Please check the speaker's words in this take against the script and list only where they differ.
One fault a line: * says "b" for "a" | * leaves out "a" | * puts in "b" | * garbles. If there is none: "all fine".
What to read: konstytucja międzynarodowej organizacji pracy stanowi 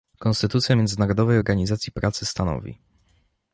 all fine